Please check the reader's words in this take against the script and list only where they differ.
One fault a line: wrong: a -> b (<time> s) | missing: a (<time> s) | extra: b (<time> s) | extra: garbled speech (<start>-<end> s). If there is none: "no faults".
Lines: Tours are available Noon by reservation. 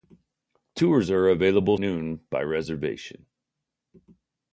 no faults